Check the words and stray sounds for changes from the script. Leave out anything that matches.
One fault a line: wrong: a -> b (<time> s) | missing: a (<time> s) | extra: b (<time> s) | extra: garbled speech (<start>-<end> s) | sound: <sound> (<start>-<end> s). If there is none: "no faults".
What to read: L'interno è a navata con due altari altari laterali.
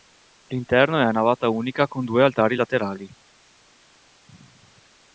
extra: unica (1.5 s)
missing: altari (2.5 s)